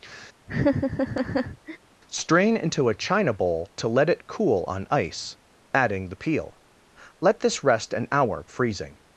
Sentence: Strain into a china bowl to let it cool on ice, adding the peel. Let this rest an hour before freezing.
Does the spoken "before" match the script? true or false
false